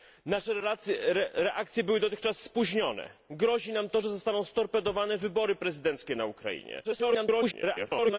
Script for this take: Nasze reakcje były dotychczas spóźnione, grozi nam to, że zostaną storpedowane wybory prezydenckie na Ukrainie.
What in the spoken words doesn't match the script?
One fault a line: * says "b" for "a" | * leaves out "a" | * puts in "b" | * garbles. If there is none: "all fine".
* garbles